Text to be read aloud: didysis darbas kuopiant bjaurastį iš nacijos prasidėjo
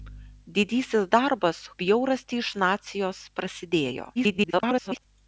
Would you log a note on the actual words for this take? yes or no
yes